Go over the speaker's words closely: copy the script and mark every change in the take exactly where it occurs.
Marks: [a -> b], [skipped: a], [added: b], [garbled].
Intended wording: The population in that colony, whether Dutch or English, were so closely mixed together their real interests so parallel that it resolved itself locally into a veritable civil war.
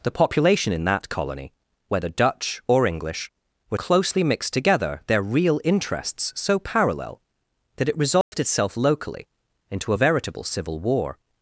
The population in that colony, whether Dutch or English, were [skipped: so] closely mixed together their real interests so parallel that it resolved itself locally into a veritable civil war.